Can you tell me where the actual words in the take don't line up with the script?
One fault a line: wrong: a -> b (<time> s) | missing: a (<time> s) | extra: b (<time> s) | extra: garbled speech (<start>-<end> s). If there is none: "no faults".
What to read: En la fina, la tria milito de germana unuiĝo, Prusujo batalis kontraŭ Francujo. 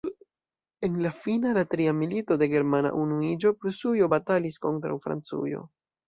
no faults